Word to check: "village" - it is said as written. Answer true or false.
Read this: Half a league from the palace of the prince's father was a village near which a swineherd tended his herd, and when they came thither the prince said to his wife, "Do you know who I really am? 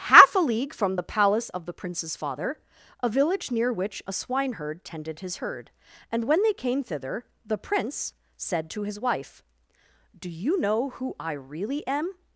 true